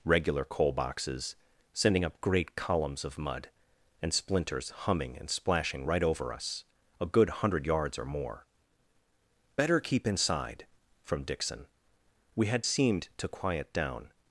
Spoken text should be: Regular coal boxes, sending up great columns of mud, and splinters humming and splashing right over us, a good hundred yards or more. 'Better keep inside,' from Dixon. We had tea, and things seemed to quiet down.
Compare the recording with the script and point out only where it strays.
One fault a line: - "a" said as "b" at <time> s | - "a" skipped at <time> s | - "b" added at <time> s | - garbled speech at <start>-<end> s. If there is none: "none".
- "tea and things" skipped at 12.6 s